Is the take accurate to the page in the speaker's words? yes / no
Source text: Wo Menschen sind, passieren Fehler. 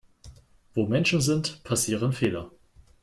yes